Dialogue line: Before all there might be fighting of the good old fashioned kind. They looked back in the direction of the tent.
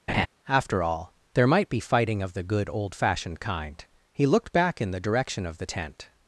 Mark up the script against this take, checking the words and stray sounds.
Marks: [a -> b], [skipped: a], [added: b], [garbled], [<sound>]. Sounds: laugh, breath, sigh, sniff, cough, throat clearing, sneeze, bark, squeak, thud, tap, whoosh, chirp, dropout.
[laugh] [Before -> After] all there might be fighting of the good old fashioned kind. [They -> He] looked back in the direction of the tent.